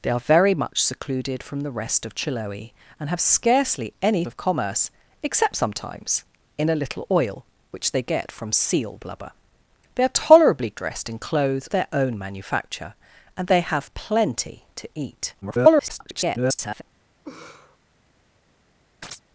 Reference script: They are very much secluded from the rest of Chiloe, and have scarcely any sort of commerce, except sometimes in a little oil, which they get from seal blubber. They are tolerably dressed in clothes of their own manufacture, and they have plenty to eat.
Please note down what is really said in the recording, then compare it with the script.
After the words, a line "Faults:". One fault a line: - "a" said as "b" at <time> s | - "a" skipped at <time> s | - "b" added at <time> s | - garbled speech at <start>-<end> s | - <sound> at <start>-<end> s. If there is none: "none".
They are very much secluded from the rest of Chiloe, and have scarcely any of commerce, except sometimes in a little oil, which they get from seal blubber. They are tolerably dressed in clothes their own manufacture, and they have plenty to eat. [garbled]
Faults:
- "sort" skipped at 4.2 s
- "of" skipped at 11.7 s
- garbled speech at 15.4-16.8 s
- laugh at 17.2-17.8 s
- chirp at 19.0-19.2 s